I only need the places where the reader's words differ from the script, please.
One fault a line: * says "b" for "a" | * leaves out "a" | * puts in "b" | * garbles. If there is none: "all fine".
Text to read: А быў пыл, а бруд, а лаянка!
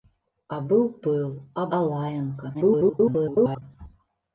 * leaves out "бруд"
* garbles